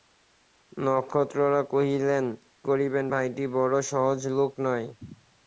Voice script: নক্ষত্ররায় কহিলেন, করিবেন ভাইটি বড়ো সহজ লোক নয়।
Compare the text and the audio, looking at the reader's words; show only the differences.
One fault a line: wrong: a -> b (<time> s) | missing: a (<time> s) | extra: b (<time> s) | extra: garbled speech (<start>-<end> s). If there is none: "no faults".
no faults